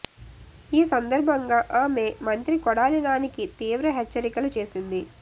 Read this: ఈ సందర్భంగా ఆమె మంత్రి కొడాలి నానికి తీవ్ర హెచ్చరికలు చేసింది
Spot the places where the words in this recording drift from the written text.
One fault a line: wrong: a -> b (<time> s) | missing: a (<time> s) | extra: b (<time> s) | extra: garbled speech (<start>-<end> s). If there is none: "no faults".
no faults